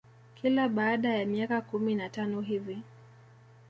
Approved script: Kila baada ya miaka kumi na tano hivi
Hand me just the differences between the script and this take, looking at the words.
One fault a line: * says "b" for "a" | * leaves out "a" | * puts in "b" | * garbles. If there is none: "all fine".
all fine